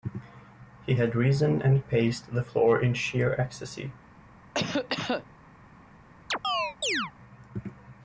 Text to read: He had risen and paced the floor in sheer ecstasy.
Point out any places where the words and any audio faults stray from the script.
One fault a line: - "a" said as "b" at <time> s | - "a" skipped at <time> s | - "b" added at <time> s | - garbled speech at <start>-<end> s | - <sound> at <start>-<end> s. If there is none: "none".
- cough at 4.5-5.3 s
- chirp at 6.3-7.1 s